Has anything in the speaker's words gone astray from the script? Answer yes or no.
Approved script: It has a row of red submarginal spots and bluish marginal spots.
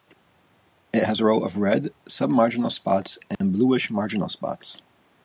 no